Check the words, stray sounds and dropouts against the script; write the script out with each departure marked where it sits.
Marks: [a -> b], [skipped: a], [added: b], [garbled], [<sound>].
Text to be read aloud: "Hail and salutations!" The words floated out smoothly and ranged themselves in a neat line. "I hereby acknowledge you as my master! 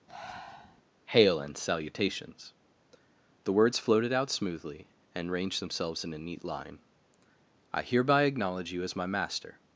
[breath] "Hail and salutations!" The words floated out smoothly and ranged themselves in a neat line. "I hereby acknowledge you as my master!